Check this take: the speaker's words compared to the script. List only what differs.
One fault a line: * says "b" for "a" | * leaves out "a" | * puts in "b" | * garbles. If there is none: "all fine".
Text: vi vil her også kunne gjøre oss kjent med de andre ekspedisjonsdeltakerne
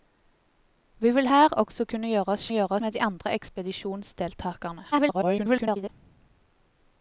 * says "gjøre" for "kjent"
* garbles